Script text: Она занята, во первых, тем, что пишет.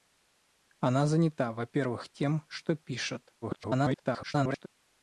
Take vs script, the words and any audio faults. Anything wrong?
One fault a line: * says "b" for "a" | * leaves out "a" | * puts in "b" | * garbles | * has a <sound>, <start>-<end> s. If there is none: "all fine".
* garbles